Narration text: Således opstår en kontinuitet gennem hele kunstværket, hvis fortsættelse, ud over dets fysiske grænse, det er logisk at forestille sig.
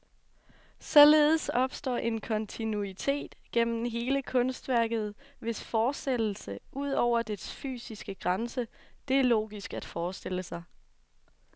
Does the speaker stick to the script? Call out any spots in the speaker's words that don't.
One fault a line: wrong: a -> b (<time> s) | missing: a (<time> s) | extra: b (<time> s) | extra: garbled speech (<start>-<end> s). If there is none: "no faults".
no faults